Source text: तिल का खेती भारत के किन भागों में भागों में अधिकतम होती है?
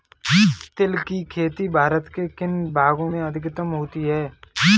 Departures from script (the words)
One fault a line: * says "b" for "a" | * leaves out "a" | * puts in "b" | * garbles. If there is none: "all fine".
* says "की" for "का"
* leaves out "भागों में"